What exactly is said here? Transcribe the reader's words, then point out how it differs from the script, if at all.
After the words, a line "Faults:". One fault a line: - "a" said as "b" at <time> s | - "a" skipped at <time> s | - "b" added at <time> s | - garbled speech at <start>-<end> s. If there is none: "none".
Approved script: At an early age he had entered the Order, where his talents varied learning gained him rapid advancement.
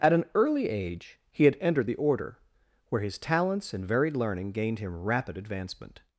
At an early age he had entered the Order, where his talents and varied learning gained him rapid advancement.
Faults:
- "and" added at 3.7 s